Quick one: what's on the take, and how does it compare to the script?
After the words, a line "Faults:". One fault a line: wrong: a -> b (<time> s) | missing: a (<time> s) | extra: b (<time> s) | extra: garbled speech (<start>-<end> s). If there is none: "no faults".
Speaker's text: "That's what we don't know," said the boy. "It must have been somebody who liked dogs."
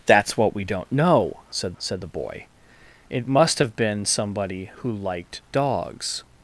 "That's what we don't know," said said the boy. "It must have been somebody who liked dogs."
Faults:
extra: said (1.8 s)